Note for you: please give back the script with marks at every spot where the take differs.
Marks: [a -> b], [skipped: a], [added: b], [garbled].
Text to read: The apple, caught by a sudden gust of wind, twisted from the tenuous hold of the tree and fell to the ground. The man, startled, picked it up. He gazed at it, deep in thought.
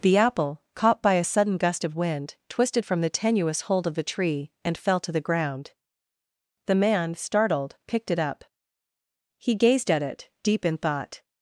The apple, caught by a sudden gust of wind, twisted from the tenuous hold of the tree and fell to the ground. The man, startled, picked it up. He gazed at it, deep in thought.